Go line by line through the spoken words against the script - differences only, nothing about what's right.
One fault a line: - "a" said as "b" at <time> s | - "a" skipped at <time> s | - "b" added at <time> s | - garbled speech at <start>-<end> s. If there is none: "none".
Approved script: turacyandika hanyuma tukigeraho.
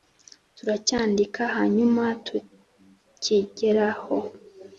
none